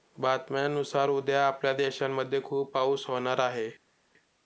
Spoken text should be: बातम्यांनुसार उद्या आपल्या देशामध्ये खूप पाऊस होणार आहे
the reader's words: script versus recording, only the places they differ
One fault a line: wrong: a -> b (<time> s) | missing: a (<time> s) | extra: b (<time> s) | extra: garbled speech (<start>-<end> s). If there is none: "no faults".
no faults